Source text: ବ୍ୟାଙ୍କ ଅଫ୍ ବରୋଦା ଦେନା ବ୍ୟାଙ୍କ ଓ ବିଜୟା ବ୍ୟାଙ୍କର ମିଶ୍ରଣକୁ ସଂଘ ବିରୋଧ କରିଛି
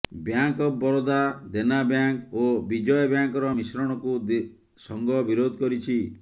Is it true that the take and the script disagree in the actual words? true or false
false